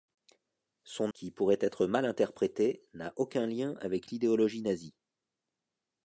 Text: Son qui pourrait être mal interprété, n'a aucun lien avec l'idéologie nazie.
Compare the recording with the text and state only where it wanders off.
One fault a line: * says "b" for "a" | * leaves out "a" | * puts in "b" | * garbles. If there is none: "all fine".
all fine